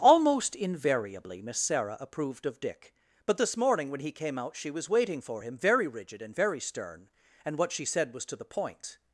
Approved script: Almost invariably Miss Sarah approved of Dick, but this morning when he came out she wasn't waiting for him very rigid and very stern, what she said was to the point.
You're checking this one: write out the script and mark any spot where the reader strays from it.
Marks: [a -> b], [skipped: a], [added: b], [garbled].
Almost invariably Miss Sarah approved of Dick, but this morning when he came out she [wasn't -> was] waiting for him very rigid and very stern, [added: and] what she said was to the point.